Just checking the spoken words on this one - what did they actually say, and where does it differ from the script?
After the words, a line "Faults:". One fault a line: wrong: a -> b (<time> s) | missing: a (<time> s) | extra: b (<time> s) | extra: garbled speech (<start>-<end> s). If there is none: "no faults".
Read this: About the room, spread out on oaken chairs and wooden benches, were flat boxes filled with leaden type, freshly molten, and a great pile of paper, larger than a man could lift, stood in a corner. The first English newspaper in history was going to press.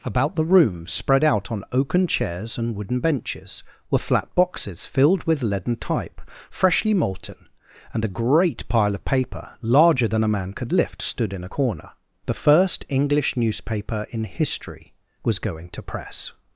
About the room, spread out on oaken chairs and wooden benches, were flat boxes filled with leaden type, freshly molten, and a great pile of paper, larger than a man could lift, stood in a corner. The first English newspaper in history was going to press.
Faults:
no faults